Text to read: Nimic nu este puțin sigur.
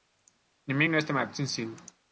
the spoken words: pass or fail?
fail